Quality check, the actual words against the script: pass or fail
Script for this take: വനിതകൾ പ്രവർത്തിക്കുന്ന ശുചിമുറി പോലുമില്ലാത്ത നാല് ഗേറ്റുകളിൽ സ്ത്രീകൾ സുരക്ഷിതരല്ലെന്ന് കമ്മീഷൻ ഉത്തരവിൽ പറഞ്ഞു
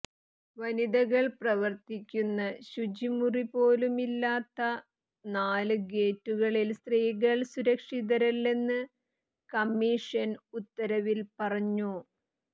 pass